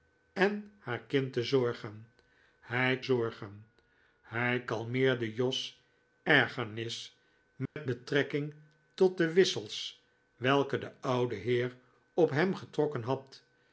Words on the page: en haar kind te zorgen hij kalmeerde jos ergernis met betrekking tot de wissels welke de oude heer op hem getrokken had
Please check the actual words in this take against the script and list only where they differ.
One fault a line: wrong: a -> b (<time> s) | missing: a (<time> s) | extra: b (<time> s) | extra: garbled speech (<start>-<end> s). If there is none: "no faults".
extra: zorgen hij (3.0 s)